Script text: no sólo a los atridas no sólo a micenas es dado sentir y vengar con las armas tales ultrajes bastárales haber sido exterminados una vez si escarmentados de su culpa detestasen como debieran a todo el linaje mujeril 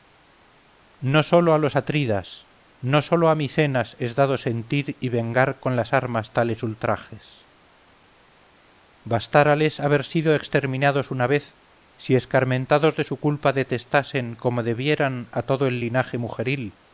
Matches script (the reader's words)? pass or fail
pass